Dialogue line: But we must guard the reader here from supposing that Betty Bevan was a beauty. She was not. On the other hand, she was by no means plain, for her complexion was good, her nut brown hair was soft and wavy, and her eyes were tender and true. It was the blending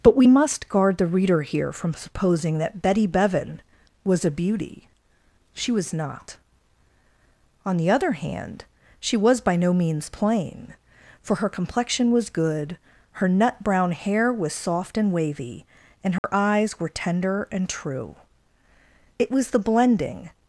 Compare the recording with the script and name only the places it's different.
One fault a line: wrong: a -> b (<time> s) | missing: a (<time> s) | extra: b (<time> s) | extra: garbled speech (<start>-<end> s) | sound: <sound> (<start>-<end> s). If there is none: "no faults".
sound: dropout (16.2-16.2 s)